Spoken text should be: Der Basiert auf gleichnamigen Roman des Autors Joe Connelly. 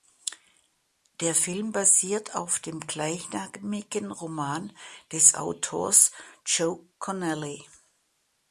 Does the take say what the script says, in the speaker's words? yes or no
no